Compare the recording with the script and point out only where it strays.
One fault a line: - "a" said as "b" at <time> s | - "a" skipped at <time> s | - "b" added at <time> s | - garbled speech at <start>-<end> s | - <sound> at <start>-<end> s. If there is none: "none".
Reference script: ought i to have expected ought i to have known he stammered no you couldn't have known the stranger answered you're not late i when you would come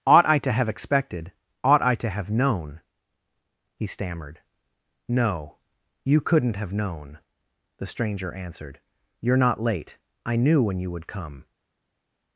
- "knew" added at 10.4 s